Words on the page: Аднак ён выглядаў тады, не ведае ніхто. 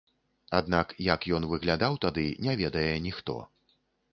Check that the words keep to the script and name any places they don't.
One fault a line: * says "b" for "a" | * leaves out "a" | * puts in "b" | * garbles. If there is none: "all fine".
* puts in "як"